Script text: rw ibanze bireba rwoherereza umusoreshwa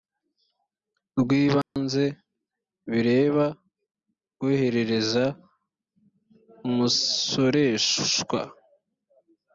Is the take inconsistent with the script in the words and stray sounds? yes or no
yes